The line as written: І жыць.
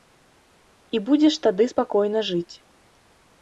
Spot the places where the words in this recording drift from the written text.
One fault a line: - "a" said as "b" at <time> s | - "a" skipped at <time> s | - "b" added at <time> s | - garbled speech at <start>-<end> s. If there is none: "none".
- "будзеш тады спакойна" added at 1.1 s